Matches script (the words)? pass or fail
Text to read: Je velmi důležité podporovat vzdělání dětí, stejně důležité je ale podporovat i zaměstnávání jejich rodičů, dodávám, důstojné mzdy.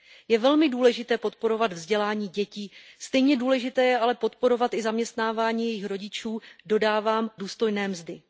pass